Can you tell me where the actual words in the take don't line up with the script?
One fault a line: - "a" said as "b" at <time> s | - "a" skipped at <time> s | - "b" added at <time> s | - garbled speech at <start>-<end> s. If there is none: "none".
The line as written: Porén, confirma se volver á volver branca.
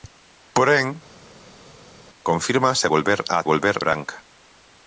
none